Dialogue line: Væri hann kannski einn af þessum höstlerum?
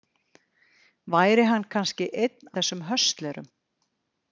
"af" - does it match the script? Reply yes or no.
no